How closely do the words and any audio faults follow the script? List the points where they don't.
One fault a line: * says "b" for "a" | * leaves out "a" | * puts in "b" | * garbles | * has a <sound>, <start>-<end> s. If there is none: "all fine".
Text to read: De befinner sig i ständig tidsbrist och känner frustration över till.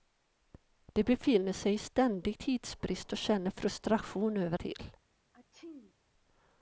* has a sneeze, 5.3-5.9 s